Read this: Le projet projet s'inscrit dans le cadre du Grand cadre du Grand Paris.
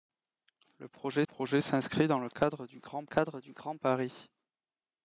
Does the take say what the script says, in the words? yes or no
yes